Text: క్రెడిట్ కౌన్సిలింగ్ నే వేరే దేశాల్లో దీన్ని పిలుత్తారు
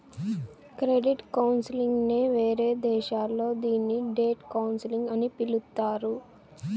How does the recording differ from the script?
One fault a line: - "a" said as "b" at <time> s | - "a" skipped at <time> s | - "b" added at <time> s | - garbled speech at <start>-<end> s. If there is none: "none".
- "డెట్ కౌన్సిలింగ్ అని" added at 4.1 s